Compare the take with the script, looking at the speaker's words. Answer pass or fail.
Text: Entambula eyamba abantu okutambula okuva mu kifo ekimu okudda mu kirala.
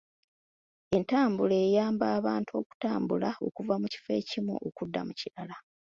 pass